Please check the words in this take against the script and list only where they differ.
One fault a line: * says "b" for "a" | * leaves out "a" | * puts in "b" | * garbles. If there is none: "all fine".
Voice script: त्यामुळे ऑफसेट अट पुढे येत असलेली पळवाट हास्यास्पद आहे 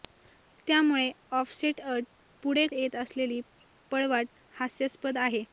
all fine